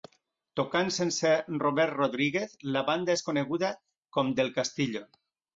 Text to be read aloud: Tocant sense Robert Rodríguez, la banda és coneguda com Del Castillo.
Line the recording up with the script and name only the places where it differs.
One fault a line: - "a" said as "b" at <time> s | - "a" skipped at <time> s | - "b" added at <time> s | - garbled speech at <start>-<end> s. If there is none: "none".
none